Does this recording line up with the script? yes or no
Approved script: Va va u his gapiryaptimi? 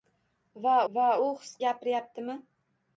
yes